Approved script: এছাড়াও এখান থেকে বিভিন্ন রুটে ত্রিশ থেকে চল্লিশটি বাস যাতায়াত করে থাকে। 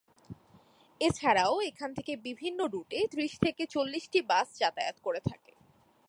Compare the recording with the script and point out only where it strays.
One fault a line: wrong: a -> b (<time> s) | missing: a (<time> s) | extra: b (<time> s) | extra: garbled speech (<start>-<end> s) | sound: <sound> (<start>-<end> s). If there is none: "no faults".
no faults